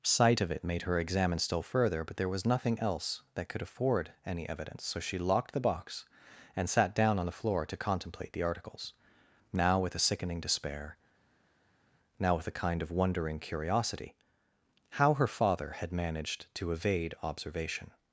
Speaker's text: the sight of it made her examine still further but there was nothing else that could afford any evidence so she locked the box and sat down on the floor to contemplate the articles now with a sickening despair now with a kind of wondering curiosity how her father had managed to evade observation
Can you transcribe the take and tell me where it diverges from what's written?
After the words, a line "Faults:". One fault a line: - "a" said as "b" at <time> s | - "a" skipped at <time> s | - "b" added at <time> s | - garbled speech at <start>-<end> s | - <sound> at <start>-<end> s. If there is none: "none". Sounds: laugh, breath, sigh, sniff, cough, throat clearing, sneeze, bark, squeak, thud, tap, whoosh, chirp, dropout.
sight of it made her examine still further but there was nothing else that could afford any evidence so she locked the box and sat down on the floor to contemplate the articles now with a sickening despair now with a kind of wondering curiosity how her father had managed to evade observation
Faults:
- "the" skipped at 0.1 s